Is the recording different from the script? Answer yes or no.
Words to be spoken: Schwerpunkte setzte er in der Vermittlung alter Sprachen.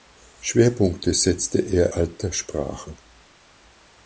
yes